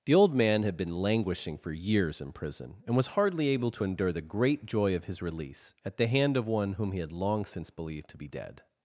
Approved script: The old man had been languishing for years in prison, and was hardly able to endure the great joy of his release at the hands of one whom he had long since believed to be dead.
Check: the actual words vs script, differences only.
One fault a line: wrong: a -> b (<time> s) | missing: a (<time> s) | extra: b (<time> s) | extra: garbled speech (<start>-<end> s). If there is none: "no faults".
wrong: hands -> hand (6.1 s)